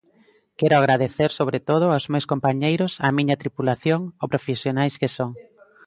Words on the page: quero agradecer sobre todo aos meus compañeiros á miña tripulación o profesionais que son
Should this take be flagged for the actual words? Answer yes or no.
no